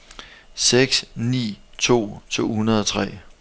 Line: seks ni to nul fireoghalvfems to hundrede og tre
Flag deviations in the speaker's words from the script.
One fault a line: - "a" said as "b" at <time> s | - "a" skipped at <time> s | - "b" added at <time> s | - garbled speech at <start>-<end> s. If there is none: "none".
- "nul fireoghalvfems" skipped at 2.2 s